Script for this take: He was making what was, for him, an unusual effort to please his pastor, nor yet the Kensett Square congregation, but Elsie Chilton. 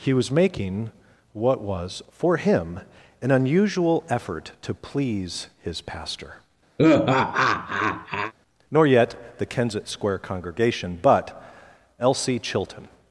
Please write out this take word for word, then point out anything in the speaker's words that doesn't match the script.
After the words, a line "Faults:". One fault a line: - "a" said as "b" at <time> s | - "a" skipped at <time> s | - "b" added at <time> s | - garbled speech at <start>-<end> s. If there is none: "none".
He was making what was, for him, an unusual effort to please his pastor, nor yet the Kensett Square congregation, but Elsie Chilton.
Faults:
none